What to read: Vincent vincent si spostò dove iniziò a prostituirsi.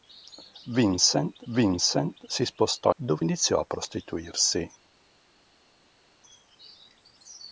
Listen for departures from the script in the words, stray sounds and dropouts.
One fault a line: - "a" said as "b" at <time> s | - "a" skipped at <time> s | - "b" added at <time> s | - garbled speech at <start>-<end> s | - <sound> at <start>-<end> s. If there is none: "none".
none